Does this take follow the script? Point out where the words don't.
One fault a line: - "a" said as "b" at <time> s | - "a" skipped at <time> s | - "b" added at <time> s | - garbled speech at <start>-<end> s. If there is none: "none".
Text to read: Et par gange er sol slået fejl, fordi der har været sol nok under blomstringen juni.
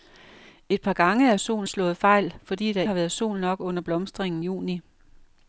none